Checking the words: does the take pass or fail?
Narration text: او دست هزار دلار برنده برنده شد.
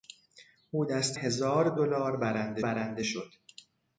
pass